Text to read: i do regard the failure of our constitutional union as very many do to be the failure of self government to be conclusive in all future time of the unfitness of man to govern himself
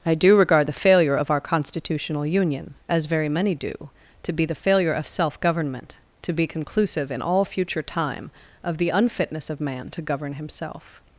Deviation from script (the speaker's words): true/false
false